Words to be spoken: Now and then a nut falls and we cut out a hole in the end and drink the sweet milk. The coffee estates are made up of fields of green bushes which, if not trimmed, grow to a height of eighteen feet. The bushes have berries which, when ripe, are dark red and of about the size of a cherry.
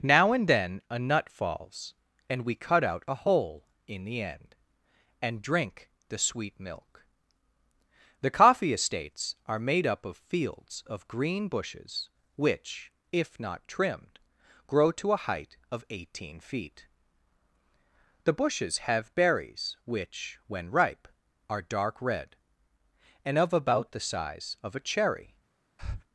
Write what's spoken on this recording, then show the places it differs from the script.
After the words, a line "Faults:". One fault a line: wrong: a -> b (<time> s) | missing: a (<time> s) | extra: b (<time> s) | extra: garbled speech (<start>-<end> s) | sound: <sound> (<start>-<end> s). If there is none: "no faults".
Now and then a nut falls and we cut out a hole in the end and drink the sweet milk. The coffee estates are made up of fields of green bushes which, if not trimmed, grow to a height of eighteen feet. The bushes have berries which, when ripe, are dark red and of about the size of a cherry.
Faults:
sound: breath (25.8-26.0 s)